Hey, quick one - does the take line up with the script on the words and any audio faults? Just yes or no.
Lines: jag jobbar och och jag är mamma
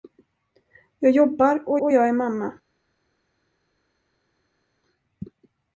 yes